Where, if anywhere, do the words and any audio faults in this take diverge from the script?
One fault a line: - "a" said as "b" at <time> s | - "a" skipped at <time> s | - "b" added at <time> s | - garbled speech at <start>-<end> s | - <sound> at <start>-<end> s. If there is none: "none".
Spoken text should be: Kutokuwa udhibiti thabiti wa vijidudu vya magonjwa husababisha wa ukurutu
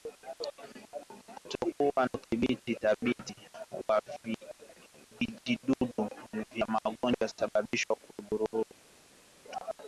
none